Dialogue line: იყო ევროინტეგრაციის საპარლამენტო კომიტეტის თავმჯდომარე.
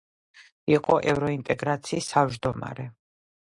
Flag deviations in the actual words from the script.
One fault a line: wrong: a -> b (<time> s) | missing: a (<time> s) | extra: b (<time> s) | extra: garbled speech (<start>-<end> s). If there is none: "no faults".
missing: საპარლამენტო კომიტეტის (2.1 s)